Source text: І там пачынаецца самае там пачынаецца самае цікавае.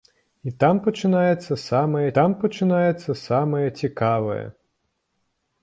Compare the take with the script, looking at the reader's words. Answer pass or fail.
pass